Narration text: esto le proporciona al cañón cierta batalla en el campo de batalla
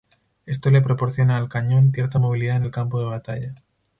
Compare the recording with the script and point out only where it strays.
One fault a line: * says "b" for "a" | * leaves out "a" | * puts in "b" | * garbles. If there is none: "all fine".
* says "movilidad" for "batalla"